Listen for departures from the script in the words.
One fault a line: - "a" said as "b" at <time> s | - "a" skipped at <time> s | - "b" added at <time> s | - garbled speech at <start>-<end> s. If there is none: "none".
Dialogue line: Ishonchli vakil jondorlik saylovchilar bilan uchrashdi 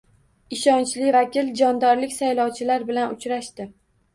none